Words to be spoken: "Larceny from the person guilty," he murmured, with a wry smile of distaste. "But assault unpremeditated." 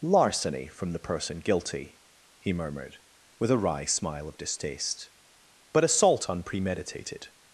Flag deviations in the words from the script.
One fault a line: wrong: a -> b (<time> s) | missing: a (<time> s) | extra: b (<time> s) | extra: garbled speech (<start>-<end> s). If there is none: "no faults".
no faults